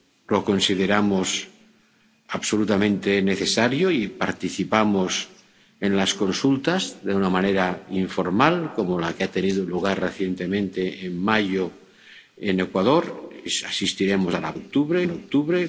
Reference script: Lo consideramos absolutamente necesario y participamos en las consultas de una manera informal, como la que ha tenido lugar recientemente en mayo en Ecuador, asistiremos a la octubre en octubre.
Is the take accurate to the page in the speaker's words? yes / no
yes